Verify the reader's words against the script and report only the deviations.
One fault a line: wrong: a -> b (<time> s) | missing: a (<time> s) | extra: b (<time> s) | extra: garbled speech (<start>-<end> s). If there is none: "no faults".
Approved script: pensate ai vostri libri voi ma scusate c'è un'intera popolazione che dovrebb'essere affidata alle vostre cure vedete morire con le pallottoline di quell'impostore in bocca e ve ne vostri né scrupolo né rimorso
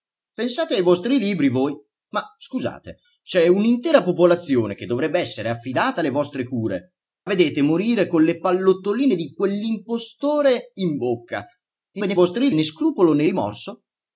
no faults